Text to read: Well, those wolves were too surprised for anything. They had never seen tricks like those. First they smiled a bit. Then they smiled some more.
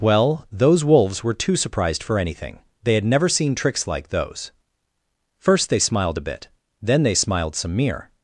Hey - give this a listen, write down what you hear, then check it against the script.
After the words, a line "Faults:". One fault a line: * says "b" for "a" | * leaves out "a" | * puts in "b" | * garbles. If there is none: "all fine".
Well, those wolves were too surprised for anything. They had never seen tricks like those. First they smiled a bit. Then they smiled some mere.
Faults:
* says "mere" for "more"